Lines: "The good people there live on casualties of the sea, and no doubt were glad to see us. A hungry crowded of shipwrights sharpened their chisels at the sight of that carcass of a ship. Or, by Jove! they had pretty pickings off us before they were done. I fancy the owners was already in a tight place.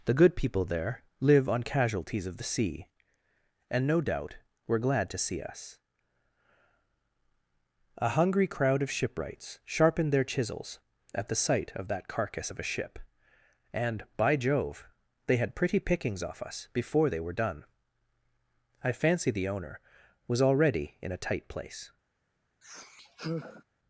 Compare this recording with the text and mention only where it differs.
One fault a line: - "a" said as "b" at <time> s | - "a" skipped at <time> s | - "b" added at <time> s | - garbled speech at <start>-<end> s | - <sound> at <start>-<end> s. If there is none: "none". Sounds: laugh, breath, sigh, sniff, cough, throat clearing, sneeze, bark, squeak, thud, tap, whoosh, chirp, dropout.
- "crowded" said as "crowd" at 8.5 s
- "Or" said as "And" at 13.7 s
- "owners" said as "owner" at 19.5 s
- sigh at 22.6-23.6 s